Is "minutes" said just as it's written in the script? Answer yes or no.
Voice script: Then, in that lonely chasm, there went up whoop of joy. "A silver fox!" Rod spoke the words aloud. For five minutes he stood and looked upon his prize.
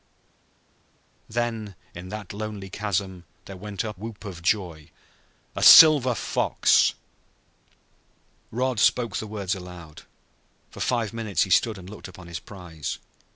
yes